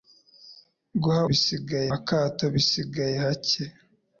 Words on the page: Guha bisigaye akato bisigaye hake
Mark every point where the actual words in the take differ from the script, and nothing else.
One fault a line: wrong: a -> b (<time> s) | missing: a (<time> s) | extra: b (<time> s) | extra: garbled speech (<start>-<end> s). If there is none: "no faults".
no faults